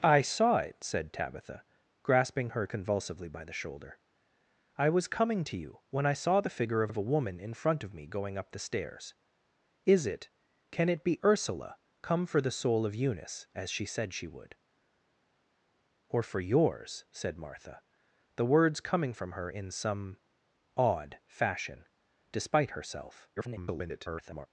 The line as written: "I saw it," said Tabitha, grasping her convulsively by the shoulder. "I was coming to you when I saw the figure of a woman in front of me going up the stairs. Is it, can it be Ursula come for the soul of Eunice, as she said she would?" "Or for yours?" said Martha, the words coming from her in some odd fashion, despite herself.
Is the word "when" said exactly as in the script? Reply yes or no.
yes